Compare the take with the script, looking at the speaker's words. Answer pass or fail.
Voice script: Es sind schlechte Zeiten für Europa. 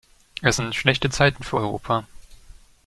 pass